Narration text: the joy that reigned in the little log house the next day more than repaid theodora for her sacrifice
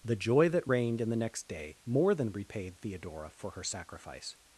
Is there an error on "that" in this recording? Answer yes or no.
no